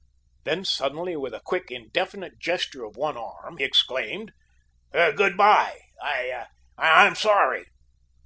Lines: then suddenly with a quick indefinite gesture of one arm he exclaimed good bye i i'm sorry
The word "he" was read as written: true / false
false